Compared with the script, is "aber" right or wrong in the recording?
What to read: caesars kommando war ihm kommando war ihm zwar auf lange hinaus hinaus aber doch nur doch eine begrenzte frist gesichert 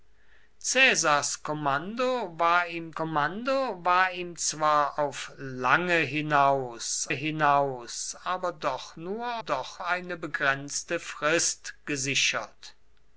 right